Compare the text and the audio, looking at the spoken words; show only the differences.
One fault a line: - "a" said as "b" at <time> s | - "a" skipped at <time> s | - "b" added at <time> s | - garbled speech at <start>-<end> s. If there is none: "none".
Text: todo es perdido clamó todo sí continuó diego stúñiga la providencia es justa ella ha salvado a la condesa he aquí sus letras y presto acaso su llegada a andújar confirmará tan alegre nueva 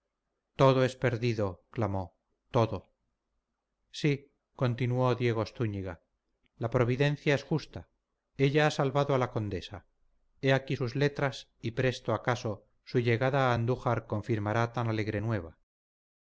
none